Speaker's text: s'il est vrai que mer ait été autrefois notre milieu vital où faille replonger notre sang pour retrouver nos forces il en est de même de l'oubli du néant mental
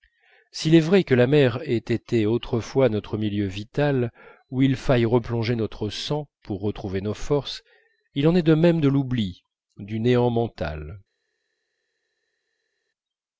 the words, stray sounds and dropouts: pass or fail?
fail